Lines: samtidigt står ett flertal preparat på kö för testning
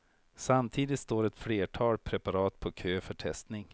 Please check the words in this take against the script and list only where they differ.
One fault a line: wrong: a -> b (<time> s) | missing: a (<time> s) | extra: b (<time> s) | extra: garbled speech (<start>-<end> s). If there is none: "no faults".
no faults